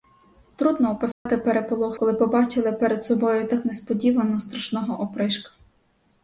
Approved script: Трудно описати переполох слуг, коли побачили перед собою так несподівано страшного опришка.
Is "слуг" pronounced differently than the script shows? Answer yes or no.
yes